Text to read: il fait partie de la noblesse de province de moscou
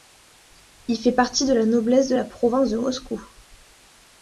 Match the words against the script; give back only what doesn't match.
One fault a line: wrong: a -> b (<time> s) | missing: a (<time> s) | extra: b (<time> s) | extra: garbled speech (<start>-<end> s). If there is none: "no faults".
extra: la (2.1 s)